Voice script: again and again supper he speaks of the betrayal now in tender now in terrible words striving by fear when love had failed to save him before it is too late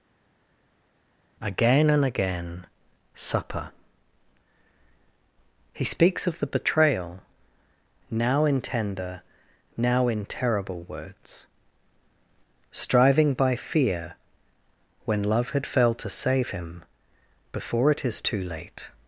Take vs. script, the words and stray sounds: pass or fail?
pass